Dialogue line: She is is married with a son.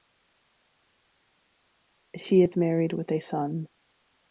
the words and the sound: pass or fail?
fail